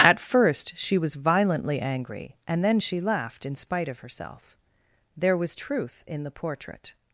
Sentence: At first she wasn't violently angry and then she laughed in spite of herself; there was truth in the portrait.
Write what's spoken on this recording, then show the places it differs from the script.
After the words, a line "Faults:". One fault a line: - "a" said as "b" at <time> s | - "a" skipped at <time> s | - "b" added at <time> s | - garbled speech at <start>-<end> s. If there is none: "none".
At first she was violently angry and then she laughed in spite of herself; there was truth in the portrait.
Faults:
- "wasn't" said as "was" at 1.0 s